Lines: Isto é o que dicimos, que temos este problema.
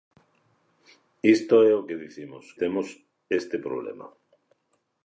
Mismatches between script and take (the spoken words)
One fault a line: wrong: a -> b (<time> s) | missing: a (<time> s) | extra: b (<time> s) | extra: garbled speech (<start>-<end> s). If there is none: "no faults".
missing: que (2.5 s)